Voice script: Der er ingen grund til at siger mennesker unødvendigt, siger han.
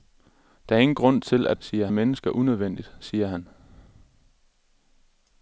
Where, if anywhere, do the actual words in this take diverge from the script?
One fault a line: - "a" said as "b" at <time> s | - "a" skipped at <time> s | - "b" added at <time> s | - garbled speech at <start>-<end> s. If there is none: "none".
none